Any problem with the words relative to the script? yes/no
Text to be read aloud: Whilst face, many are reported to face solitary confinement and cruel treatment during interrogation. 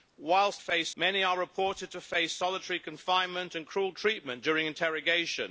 no